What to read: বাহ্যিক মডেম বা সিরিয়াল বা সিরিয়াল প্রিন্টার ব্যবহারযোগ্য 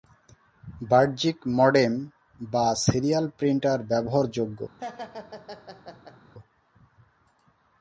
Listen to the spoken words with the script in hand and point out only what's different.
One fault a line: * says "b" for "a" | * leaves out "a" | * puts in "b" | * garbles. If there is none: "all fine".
* leaves out "বা সিরিয়াল"